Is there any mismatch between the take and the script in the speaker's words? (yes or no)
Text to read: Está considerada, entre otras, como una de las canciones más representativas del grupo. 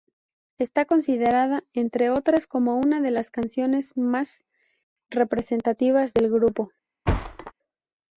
no